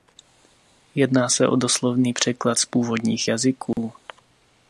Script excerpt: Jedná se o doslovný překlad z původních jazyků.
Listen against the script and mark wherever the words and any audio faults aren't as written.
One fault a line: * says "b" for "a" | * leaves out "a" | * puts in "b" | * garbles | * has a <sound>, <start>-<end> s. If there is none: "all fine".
* has a dropout, 3.7-3.8 s